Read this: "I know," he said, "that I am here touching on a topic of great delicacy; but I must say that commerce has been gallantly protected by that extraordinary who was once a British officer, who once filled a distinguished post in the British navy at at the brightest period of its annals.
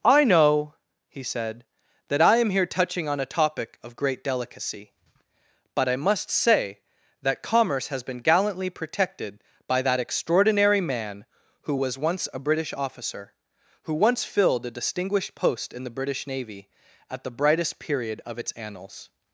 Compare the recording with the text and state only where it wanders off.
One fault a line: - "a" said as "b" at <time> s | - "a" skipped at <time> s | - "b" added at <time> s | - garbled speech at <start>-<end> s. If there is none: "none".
- "man" added at 10.8 s
- "at" skipped at 17.2 s